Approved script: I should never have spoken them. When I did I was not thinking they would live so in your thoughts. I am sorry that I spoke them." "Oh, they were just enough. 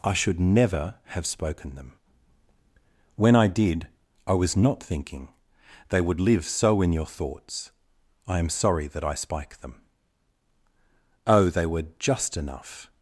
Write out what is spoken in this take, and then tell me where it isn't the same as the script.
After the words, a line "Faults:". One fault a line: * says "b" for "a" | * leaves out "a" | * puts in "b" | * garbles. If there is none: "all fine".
I should never have spoken them. When I did I was not thinking they would live so in your thoughts. I am sorry that I spike them." "Oh, they were just enough.
Faults:
* says "spike" for "spoke"